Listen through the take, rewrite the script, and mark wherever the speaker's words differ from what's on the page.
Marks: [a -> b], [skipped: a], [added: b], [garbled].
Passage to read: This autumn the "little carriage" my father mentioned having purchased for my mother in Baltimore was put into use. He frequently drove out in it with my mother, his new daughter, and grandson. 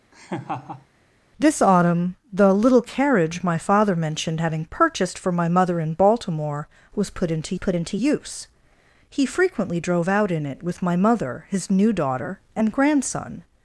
This autumn the "little carriage" my father mentioned having purchased for my mother in Baltimore was put into [added: put into] use. He frequently drove out in it with my mother, his new daughter, and grandson.